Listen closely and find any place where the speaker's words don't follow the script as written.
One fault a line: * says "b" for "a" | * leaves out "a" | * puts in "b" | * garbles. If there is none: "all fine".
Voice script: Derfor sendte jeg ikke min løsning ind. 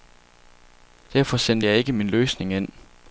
all fine